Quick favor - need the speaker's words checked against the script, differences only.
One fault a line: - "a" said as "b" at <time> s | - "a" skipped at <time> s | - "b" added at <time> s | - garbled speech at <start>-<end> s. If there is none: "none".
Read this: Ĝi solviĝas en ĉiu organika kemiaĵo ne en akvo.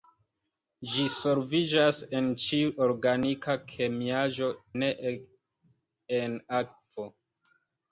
none